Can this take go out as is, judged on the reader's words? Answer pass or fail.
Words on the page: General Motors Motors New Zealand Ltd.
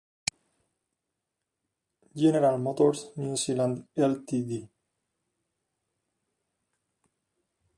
fail